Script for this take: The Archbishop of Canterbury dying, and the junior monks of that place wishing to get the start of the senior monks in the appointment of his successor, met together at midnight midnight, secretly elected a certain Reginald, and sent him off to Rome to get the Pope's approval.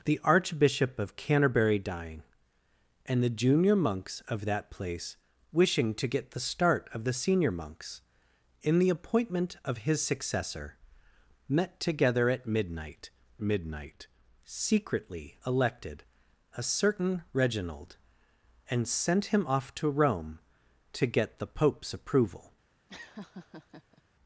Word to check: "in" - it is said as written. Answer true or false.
true